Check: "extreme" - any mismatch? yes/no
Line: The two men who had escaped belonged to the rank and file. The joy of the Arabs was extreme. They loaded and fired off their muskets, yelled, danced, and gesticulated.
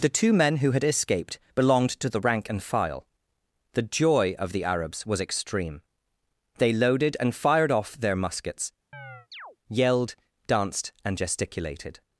no